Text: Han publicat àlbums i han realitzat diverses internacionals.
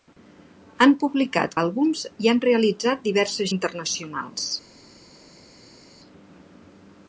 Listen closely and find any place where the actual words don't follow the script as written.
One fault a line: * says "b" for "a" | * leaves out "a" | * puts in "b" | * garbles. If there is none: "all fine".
all fine